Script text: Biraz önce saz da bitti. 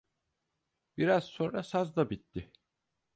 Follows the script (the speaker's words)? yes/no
no